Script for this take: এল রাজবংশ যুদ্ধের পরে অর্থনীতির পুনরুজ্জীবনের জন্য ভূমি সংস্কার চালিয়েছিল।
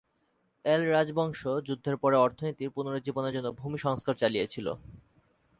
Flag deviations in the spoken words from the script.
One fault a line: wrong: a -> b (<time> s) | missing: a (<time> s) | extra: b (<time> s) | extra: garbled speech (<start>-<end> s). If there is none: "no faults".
no faults